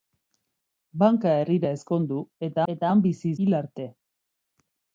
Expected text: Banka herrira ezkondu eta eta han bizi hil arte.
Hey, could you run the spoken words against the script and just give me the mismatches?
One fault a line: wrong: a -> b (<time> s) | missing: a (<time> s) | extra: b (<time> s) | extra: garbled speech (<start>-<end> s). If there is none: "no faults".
no faults